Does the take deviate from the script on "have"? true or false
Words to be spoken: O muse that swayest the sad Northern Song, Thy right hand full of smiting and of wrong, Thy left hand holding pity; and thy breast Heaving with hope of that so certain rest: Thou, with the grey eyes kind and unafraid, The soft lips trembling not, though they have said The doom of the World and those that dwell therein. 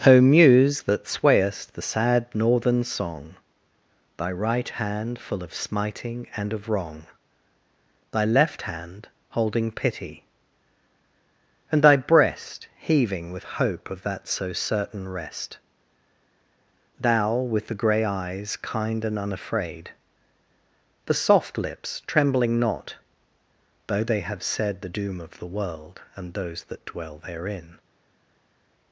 false